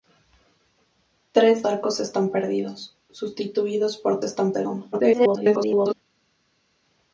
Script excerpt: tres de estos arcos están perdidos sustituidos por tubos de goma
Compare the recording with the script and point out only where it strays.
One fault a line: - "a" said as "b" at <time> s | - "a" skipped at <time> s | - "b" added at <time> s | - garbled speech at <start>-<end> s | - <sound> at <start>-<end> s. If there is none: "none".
- "de estos" skipped at 1.6 s
- "tubos" said as "están" at 4.2 s
- garbled speech at 4.9-5.9 s